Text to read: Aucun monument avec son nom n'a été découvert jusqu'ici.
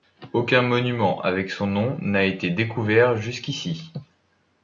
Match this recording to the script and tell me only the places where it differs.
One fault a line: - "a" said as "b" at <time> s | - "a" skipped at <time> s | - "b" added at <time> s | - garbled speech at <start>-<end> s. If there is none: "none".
none